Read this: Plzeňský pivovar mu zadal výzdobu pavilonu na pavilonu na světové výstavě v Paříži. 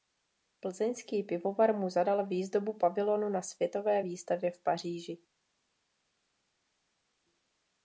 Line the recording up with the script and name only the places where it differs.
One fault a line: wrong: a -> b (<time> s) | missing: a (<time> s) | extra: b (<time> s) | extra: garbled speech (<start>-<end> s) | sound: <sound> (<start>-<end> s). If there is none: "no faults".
missing: pavilonu na (3.4 s)